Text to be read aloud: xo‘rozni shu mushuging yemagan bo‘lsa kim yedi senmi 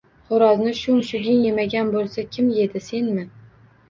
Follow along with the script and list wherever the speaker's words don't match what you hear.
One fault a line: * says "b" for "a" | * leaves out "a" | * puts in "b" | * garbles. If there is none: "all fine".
all fine